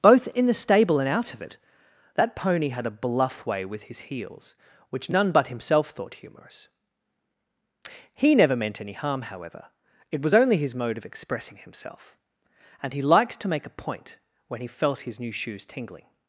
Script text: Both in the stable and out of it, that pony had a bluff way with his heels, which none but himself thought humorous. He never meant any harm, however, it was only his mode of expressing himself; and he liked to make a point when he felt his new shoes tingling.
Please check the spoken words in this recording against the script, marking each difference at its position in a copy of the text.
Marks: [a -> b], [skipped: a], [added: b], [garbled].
Both in the stable and out of it, that pony had a bluff way with his heels, which none but himself thought humorous. He never meant any harm, however, it was only his mode of expressing himself; and he liked to make a point when he felt his new shoes tingling.